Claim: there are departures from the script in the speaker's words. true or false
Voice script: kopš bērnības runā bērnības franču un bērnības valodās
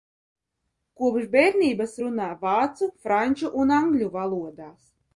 true